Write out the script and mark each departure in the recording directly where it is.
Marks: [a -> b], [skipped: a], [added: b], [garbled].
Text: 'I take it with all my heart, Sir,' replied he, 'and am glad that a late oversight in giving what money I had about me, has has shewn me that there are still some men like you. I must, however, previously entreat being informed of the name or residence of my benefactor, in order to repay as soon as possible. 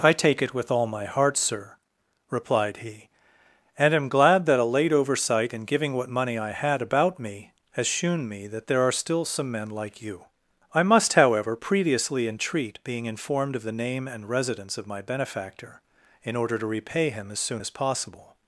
'I take it with all my heart, Sir,' replied he, 'and am glad that a late oversight in giving what money I had about me, has [skipped: has] shewn me that there are still some men like you. I must, however, previously entreat being informed of the name [or -> and] residence of my benefactor, in order to repay [added: him] as soon as possible.